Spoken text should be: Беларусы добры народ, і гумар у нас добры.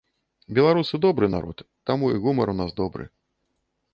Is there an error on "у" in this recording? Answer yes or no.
no